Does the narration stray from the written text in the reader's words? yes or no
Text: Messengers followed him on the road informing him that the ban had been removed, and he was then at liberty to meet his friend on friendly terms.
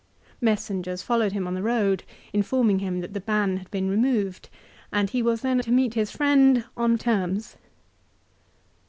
yes